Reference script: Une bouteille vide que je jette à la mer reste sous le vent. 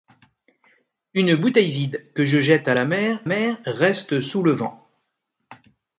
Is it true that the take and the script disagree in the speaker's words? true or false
true